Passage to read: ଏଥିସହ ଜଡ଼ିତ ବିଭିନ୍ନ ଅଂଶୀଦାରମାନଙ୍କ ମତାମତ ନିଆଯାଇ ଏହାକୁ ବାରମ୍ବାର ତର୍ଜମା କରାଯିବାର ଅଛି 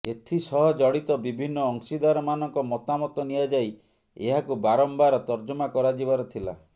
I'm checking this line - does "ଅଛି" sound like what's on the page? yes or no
no